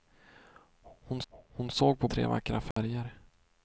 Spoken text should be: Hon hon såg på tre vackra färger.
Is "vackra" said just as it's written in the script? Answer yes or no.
yes